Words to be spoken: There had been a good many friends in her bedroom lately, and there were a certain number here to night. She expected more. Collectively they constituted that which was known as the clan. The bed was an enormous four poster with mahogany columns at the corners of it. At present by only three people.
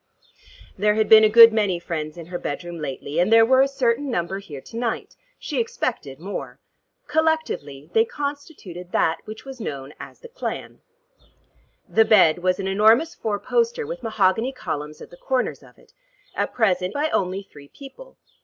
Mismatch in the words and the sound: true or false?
false